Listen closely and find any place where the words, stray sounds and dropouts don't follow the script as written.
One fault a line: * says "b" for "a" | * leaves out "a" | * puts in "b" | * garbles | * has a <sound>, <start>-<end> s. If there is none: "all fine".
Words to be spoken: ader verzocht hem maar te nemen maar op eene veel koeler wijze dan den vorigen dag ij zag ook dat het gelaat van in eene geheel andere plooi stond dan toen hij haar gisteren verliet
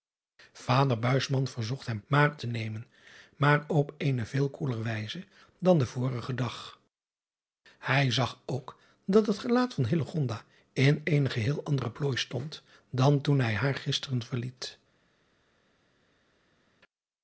all fine